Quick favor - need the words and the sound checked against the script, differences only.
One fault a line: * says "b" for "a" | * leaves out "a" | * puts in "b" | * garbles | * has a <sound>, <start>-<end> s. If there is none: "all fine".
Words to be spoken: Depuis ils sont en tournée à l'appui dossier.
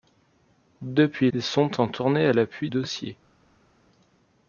all fine